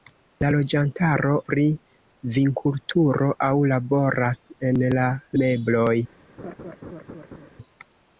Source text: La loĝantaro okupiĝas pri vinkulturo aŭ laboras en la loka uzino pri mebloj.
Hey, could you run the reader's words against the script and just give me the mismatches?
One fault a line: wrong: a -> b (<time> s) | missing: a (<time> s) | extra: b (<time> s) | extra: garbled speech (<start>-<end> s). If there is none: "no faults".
missing: okupiĝas (1.3 s)
missing: loka uzino pri (5.1 s)